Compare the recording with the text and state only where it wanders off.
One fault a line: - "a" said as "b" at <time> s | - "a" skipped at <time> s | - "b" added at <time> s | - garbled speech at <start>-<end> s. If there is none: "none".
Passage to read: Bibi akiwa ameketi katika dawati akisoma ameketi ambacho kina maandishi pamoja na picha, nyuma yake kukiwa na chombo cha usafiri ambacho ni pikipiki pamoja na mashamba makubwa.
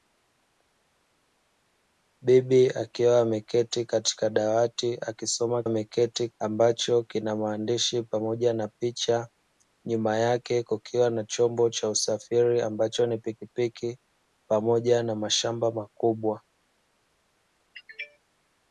none